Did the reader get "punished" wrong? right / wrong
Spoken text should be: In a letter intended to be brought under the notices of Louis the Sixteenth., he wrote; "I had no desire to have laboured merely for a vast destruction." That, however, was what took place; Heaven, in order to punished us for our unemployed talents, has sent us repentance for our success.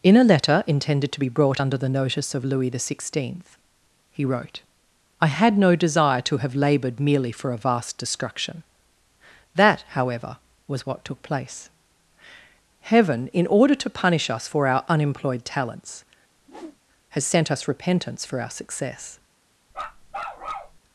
wrong